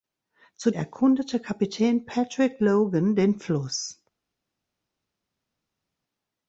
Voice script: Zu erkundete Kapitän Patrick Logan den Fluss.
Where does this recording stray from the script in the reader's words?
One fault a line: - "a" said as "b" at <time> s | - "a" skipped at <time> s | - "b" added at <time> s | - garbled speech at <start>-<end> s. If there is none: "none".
none